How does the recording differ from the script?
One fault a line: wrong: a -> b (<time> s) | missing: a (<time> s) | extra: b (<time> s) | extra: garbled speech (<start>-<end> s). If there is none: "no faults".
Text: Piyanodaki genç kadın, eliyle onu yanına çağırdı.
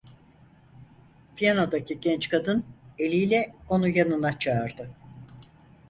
no faults